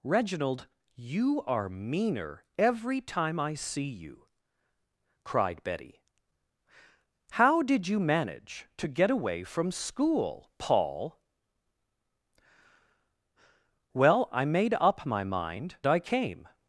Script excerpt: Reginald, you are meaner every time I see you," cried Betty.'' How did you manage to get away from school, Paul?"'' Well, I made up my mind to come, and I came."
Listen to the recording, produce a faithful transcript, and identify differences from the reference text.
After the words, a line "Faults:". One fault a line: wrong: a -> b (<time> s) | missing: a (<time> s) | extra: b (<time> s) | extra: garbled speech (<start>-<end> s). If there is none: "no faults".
Reginald, you are meaner every time I see you," cried Betty.'' How did you manage to get away from school, Paul?"'' Well, I made up my mind I came."
Faults:
missing: to come and (15.8 s)